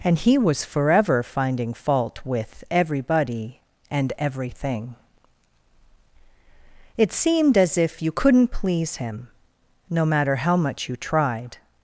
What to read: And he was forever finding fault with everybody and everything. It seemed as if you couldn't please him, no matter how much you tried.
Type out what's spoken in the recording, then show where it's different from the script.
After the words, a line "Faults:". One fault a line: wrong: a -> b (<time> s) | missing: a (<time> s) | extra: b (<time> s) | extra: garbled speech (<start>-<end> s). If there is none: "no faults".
And he was forever finding fault with everybody and everything. It seemed as if you couldn't please him, no matter how much you tried.
Faults:
no faults